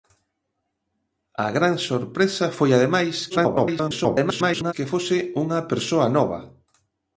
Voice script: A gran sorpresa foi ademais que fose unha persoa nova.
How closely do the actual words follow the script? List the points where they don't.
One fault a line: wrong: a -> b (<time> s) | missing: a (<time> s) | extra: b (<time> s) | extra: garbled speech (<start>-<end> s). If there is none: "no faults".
extra: garbled speech (3.3-4.7 s)